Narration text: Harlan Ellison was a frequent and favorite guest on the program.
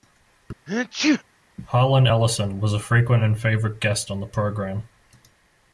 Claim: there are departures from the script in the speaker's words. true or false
false